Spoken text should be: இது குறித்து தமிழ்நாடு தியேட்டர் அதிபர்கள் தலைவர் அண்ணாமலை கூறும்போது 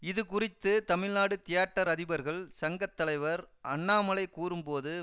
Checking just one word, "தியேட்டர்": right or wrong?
right